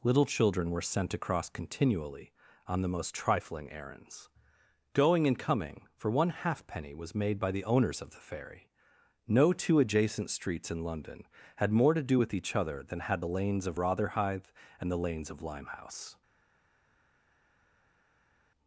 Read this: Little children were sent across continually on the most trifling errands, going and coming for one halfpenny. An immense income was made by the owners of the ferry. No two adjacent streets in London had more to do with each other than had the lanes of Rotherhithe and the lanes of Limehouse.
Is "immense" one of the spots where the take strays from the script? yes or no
yes